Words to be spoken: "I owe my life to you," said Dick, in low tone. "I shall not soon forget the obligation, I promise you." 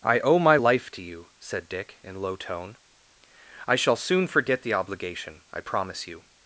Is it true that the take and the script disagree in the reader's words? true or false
true